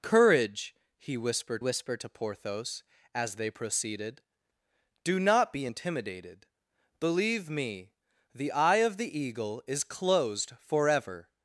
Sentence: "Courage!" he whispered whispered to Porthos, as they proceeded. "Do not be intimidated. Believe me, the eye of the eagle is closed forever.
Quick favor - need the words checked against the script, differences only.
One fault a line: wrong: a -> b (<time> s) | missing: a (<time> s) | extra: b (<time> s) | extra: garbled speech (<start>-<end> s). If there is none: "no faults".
no faults